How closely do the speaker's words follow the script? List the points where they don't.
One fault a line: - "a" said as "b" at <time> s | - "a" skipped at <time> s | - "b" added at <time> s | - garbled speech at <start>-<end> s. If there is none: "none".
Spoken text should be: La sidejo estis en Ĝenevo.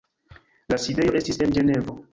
none